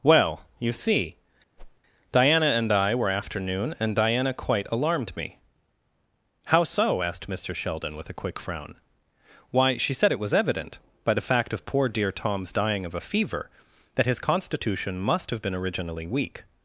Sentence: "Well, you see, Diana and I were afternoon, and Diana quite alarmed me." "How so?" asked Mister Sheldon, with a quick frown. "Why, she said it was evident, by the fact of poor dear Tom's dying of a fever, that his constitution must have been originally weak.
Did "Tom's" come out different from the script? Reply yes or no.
no